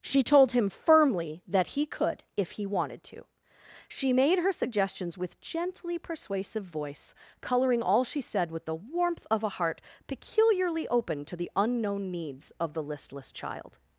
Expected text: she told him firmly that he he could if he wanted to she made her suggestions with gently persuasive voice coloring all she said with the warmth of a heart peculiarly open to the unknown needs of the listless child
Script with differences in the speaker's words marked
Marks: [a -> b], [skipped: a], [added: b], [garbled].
she told him firmly that he [skipped: he] could if he wanted to she made her suggestions with gently persuasive voice coloring all she said with the warmth of a heart peculiarly open to the unknown needs of the listless child